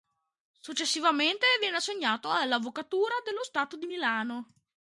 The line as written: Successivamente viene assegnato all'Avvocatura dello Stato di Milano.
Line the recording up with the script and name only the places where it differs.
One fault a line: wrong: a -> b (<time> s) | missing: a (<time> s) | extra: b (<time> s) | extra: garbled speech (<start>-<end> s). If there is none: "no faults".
no faults